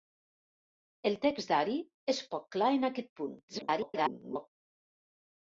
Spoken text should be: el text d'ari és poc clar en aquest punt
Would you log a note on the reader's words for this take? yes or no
yes